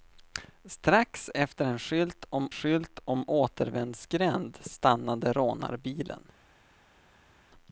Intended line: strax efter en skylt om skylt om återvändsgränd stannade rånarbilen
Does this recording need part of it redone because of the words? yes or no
no